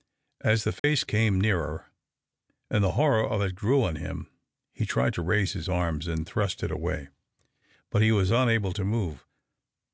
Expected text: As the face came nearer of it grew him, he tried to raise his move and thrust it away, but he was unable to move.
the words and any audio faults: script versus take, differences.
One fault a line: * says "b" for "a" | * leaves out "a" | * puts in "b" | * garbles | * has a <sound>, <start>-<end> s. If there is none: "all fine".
* has a dropout, 0.8-0.8 s
* puts in "and the horror"
* puts in "on"
* says "arms" for "move"